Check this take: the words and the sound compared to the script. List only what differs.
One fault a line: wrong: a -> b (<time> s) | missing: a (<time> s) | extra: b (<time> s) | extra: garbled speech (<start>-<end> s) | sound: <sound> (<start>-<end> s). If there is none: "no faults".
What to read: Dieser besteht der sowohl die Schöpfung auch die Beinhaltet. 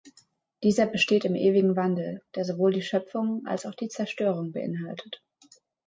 extra: im ewigen Wandel (1.2 s)
extra: als (3.5 s)
extra: Zerstörung (3.9 s)